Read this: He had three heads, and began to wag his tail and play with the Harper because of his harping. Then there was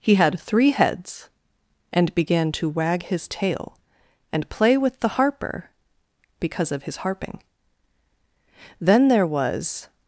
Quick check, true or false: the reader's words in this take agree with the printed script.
true